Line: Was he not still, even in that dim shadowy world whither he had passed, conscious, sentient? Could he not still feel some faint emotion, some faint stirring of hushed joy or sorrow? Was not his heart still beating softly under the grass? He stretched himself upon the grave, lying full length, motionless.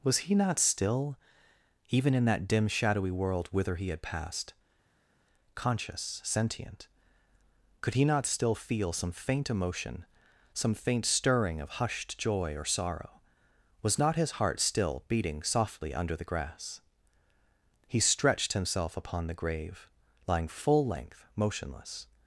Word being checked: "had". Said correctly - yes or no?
yes